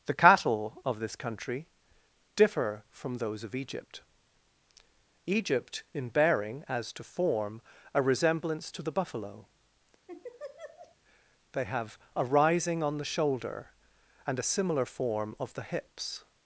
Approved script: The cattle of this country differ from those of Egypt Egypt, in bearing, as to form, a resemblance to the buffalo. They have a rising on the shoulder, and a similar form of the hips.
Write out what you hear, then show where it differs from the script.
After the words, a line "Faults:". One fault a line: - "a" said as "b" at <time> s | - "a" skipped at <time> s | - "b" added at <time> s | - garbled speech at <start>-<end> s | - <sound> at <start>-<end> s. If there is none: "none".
The cattle of this country differ from those of Egypt Egypt, in bearing, as to form, a resemblance to the buffalo. They have a rising on the shoulder, and a similar form of the hips.
Faults:
- laugh at 10.1-11.0 s